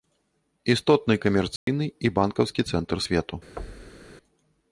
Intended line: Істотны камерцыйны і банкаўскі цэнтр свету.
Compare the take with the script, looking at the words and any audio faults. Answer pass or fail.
fail